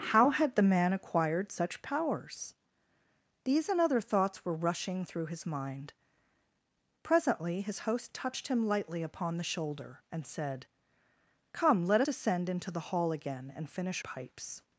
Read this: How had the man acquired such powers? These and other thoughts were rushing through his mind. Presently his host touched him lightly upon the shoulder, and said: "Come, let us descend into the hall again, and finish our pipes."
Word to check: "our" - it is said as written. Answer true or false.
false